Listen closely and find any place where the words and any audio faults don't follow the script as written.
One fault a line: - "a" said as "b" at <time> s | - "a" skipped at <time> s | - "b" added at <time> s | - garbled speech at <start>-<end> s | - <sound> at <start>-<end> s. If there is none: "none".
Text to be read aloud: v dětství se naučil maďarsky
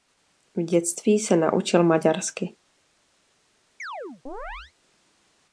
- chirp at 3.8-4.7 s